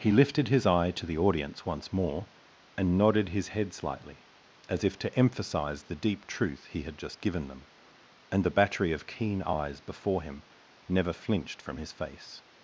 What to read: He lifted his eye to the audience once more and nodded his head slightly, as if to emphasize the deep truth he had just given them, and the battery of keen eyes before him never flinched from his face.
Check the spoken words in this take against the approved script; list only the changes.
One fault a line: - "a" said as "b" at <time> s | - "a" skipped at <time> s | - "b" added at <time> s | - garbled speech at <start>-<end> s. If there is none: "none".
none